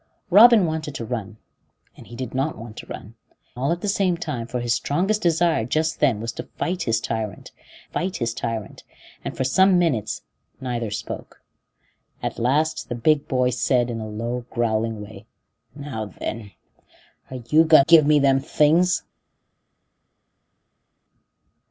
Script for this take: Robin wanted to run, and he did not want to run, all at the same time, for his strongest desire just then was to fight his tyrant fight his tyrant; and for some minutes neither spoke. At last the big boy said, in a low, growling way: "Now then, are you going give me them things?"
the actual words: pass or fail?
pass